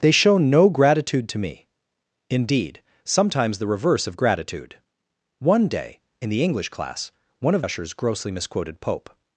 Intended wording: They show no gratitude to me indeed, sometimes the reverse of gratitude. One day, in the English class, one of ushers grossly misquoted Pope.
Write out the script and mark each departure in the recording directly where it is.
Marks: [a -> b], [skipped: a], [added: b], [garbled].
They show no gratitude to me indeed, sometimes the reverse of gratitude. One day, in the English class, one of ushers grossly misquoted Pope.